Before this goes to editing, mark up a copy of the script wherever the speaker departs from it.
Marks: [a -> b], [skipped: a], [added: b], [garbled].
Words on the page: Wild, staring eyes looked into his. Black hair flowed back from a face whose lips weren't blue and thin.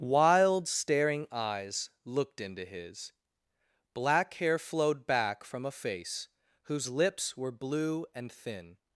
Wild, staring eyes looked into his. Black hair flowed back from a face whose lips [weren't -> were] blue and thin.